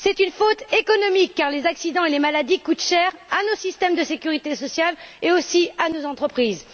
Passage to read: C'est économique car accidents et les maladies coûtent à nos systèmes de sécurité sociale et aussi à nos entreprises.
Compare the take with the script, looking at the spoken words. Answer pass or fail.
fail